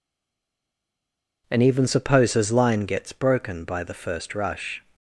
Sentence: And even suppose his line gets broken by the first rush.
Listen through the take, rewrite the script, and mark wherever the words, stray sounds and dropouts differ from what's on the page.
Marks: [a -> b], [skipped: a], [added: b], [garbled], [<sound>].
And even suppose his line gets broken by the first rush.